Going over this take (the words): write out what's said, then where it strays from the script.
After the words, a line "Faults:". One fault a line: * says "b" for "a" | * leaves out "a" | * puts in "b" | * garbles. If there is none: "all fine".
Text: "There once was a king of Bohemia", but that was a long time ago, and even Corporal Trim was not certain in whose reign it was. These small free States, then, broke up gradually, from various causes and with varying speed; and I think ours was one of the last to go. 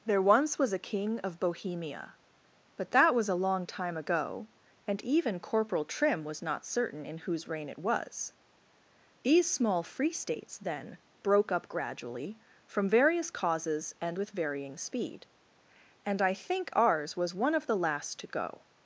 "There once was a king of Bohemia", but that was a long time ago, and even Corporal Trim was not certain in whose reign it was. These small free States, then, broke up gradually, from various causes and with varying speed; and I think ours was one of the last to go.
Faults:
all fine